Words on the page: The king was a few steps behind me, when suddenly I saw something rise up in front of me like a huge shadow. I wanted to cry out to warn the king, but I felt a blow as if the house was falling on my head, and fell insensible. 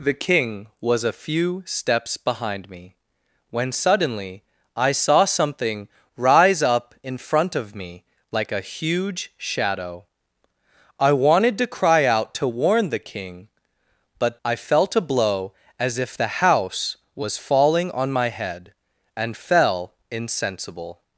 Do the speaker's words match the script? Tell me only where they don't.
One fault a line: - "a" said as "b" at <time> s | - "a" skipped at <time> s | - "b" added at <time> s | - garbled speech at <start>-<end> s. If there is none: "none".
none